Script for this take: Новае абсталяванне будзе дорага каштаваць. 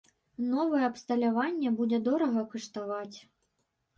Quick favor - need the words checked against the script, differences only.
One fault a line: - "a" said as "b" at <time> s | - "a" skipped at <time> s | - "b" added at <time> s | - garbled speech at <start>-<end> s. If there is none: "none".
none